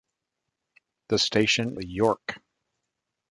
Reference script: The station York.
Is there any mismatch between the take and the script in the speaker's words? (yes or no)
no